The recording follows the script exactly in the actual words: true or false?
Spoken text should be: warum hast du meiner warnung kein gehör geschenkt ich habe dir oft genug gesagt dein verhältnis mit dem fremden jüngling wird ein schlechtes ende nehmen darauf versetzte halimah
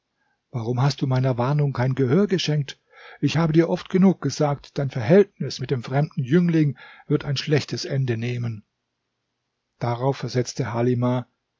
true